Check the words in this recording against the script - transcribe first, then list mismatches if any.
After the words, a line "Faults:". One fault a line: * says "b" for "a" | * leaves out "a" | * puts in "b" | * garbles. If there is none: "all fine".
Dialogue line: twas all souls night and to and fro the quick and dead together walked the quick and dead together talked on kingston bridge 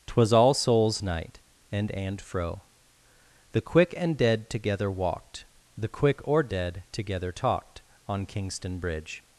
twas all souls night and and fro the quick and dead together walked the quick or dead together talked on kingston bridge
Faults:
* leaves out "to"
* says "or" for "and"